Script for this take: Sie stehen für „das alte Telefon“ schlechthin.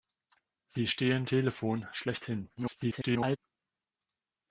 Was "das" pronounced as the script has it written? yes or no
no